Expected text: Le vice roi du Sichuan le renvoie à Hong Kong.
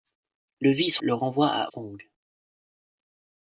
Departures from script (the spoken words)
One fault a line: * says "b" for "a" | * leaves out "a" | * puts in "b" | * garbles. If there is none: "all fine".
* leaves out "roi du Sichuan"
* leaves out "Hong"